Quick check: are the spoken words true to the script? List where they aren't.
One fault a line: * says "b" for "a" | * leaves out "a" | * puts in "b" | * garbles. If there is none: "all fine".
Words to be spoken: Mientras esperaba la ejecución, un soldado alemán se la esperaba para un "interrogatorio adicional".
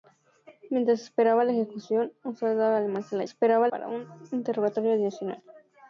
all fine